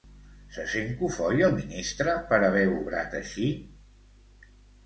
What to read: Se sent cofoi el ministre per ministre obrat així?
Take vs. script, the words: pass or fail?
fail